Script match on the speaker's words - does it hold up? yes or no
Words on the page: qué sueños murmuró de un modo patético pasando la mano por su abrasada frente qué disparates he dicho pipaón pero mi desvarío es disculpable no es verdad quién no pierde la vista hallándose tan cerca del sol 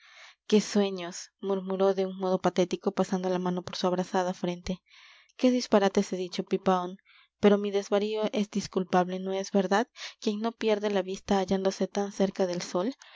yes